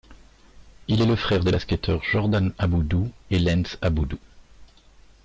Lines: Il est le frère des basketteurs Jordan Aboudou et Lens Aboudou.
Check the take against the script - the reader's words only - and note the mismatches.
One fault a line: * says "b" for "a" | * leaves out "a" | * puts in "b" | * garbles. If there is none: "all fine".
all fine